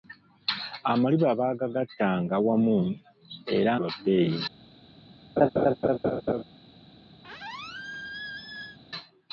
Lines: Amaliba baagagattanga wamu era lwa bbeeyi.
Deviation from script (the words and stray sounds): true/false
true